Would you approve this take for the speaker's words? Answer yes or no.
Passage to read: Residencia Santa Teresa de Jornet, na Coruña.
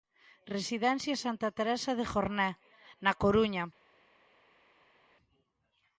yes